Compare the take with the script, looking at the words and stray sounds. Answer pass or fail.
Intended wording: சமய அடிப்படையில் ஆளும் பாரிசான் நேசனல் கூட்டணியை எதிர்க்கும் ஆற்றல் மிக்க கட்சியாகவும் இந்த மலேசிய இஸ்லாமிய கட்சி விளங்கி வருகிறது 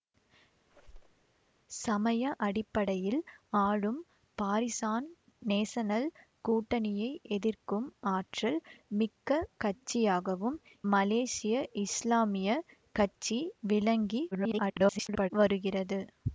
fail